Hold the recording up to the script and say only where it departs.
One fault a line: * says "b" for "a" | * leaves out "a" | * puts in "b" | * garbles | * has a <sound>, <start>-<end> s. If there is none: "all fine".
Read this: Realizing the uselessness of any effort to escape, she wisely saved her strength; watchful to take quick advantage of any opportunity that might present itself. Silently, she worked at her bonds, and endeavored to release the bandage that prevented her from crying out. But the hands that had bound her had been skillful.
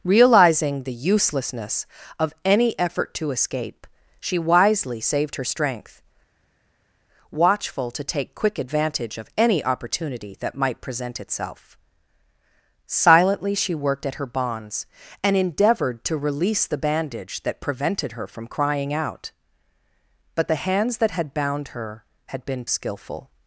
all fine